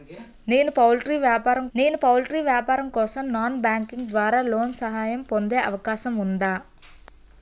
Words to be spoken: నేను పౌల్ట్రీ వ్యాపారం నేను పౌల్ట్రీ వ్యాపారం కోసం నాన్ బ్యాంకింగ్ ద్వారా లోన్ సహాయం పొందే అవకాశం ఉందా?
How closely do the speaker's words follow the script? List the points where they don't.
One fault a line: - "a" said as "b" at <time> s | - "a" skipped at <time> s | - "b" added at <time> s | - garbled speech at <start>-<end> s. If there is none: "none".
none